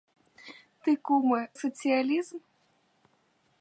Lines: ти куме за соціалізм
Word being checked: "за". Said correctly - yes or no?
no